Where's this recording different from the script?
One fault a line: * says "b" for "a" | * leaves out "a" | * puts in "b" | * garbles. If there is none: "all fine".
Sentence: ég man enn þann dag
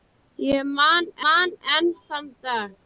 * puts in "man"